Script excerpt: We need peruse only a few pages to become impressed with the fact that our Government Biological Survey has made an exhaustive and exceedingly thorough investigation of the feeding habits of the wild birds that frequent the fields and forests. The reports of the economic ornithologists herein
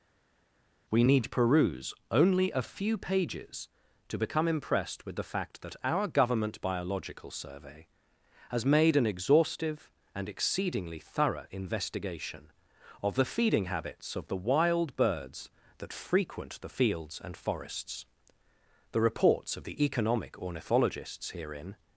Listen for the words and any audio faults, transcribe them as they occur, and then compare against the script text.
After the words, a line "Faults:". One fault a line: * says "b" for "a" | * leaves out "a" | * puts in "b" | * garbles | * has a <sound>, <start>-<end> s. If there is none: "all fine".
We need peruse only a few pages to become impressed with the fact that our Government Biological Survey has made an exhaustive and exceedingly thorough investigation of the feeding habits of the wild birds that frequent the fields and forests. The reports of the economic ornithologists herein
Faults:
all fine